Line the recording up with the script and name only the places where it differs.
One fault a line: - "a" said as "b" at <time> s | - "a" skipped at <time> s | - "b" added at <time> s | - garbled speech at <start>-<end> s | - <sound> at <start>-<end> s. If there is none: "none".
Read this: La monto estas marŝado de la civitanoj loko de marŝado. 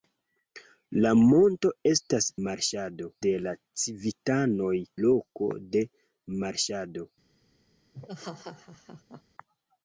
- laugh at 7.9-9.2 s